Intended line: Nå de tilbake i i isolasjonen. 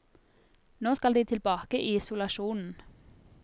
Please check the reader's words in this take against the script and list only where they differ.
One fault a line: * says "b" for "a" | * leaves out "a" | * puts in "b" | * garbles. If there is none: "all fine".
* puts in "skal"
* leaves out "i"